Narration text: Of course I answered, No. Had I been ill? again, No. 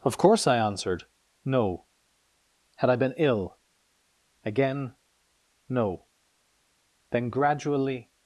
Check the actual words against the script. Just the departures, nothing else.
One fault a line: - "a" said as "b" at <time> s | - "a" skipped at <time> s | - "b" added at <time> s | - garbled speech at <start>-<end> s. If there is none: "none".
- "Then gradually" added at 7.1 s